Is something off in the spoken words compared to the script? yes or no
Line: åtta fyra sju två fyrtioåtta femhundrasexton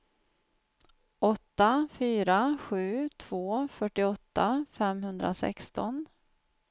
no